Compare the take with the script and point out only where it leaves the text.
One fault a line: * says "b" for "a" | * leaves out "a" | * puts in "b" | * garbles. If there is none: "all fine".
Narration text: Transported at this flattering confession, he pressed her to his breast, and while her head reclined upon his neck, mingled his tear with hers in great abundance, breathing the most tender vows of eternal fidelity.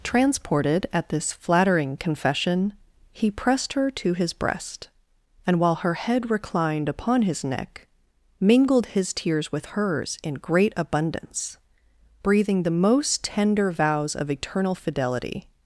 * says "tears" for "tear"